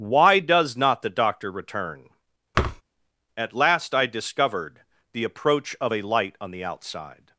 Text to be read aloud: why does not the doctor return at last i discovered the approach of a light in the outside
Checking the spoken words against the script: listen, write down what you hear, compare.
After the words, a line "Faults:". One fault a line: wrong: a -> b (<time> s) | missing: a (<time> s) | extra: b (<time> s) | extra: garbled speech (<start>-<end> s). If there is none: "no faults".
why does not the doctor return at last i discovered the approach of a light on the outside
Faults:
wrong: in -> on (6.4 s)